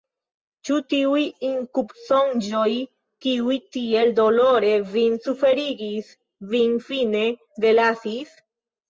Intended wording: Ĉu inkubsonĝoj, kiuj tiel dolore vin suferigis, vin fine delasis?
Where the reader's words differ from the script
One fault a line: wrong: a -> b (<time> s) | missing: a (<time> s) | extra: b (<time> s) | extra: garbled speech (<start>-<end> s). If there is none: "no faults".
extra: tiuj (0.9 s)